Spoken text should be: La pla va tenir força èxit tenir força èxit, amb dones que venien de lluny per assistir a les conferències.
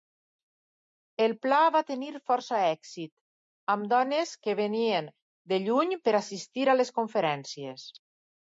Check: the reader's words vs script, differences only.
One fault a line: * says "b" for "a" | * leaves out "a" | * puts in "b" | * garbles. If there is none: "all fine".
* says "El" for "La"
* leaves out "tenir força èxit"